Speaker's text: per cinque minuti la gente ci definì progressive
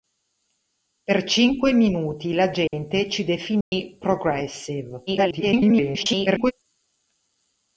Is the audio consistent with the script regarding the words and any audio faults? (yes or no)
no